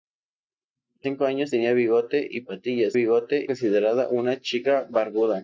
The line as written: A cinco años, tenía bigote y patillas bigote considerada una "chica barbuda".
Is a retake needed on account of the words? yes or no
no